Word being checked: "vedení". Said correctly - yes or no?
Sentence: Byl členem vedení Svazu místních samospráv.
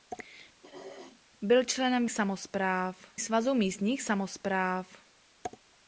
no